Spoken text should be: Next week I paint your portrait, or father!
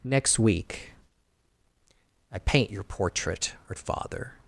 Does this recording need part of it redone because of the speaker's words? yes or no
no